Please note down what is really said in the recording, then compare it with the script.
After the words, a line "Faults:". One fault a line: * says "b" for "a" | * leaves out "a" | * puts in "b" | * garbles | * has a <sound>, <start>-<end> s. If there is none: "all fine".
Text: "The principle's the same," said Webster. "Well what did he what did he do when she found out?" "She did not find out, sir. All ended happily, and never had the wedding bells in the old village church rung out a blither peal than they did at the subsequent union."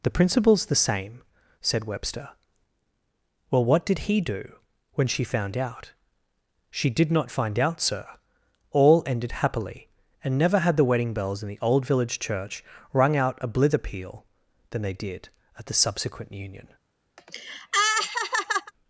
"The principle's the same," said Webster. "Well what did he do when she found out?" "She did not find out, sir. All ended happily, and never had the wedding bells in the old village church rung out a blither peal than they did at the subsequent union."
Faults:
* leaves out "what did he"
* has a laugh, 17.2-18.7 s